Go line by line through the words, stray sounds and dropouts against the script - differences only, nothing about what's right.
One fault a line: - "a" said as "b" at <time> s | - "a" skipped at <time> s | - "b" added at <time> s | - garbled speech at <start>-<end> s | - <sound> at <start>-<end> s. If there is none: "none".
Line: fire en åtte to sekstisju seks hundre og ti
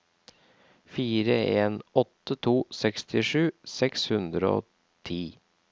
none